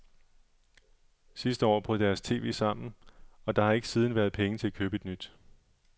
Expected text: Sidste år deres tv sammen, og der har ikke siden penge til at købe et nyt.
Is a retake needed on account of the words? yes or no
yes